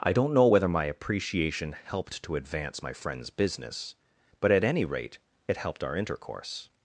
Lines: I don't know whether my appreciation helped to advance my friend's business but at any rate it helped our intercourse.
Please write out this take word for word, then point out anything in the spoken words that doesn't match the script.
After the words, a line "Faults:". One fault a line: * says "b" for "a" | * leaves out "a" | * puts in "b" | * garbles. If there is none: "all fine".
I don't know whether my appreciation helped to advance my friend's business but at any rate it helped our intercourse.
Faults:
all fine